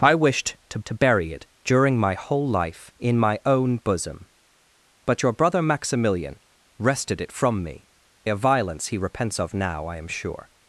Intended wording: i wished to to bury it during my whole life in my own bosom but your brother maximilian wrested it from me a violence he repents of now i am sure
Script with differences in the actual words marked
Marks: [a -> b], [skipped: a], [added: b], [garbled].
i wished to to bury it during my whole life in my own bosom but your brother maximilian wrested it from me a violence he repents of now i am sure